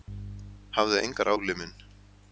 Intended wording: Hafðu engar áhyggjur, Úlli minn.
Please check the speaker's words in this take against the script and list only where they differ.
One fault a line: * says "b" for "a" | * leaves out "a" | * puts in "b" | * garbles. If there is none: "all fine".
* leaves out "áhyggjur"